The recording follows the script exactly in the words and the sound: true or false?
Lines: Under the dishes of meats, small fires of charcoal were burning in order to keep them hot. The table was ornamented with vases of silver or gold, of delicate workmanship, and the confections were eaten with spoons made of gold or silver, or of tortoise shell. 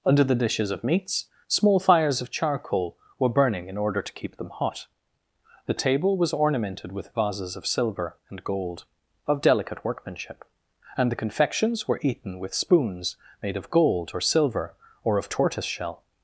false